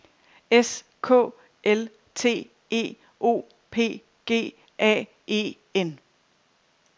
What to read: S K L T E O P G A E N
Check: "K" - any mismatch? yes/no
no